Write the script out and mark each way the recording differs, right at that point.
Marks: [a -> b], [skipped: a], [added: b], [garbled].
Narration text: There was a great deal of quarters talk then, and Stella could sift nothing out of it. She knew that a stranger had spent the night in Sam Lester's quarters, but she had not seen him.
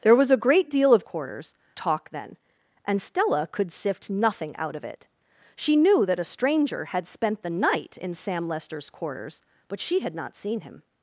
There was a great deal of quarters talk then, and Stella could sift nothing out of it. She knew that a stranger had spent the night in Sam Lester's quarters, but she had not seen him.